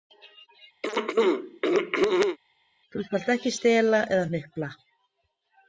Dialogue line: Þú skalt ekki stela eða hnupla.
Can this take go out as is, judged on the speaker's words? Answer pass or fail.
pass